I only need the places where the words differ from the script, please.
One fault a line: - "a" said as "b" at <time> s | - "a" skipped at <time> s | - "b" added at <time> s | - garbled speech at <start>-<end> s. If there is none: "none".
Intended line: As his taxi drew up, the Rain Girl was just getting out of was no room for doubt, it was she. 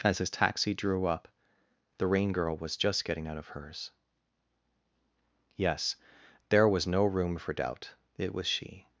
- "hers Yes there" added at 3.5 s